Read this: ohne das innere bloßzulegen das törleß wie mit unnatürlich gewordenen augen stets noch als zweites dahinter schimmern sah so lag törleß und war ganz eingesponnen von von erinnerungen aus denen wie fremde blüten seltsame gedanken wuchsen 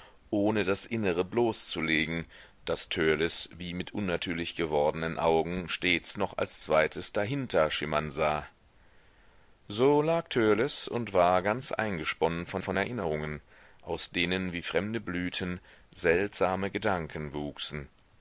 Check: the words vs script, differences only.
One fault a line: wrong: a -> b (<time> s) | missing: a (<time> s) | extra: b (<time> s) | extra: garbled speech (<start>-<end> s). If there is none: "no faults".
no faults